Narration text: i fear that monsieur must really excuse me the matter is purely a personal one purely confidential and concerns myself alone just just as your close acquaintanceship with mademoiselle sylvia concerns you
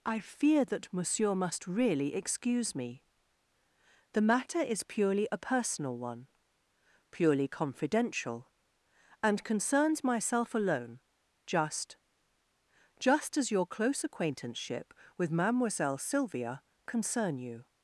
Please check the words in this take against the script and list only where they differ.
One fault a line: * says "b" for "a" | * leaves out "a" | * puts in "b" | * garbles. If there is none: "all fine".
* says "concern" for "concerns"